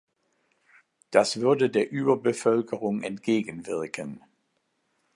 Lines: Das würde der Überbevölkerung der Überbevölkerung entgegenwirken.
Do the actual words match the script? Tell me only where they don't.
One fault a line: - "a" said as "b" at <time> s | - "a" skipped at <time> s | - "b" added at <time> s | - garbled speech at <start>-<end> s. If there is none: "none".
- "der Überbevölkerung" skipped at 3.0 s